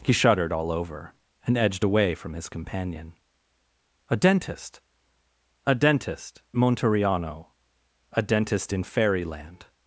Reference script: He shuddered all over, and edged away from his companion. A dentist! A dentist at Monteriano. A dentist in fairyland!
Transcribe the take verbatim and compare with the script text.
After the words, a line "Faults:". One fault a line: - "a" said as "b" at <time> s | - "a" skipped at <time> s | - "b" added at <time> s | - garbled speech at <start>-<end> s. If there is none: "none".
He shuddered all over, and edged away from his companion. A dentist! A dentist Monteriano. A dentist in fairyland!
Faults:
- "at" skipped at 6.4 s